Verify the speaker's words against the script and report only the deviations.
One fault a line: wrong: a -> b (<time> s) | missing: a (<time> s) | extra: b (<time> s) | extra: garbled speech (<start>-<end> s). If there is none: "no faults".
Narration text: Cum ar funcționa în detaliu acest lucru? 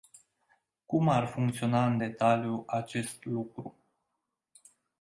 no faults